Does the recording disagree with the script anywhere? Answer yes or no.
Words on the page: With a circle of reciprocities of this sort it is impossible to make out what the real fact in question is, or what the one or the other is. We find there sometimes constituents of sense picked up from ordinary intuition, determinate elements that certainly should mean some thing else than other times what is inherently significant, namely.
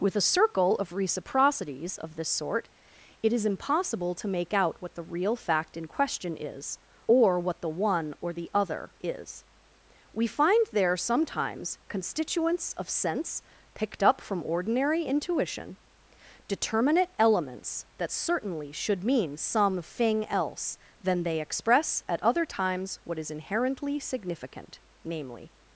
yes